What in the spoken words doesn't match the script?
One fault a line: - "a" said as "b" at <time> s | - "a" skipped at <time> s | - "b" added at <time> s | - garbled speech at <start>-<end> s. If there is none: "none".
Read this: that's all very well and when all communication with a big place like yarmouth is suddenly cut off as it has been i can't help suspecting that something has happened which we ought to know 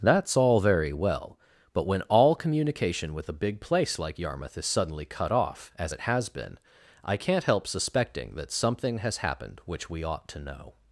- "and" said as "but" at 1.7 s